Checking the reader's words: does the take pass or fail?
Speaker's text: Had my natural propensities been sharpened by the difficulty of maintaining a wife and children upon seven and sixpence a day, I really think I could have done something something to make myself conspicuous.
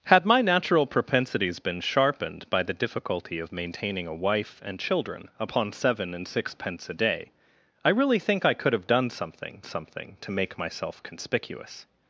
pass